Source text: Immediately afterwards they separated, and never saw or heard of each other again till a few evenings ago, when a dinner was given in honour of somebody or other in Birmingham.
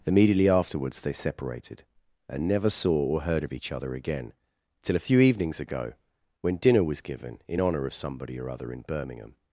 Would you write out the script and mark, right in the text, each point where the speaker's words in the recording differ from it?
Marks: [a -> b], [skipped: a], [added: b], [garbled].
Immediately afterwards they separated, and never saw or heard of each other again till a few evenings ago, when [skipped: a] dinner was given in honour of somebody or other in Birmingham.